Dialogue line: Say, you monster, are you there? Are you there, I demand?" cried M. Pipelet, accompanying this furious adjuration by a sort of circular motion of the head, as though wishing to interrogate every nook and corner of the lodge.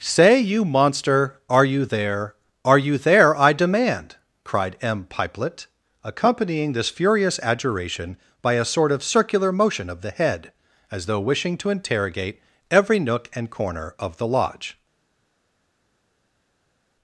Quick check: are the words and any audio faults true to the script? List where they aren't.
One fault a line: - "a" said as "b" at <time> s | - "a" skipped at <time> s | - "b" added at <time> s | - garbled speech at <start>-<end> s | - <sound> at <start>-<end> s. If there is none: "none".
none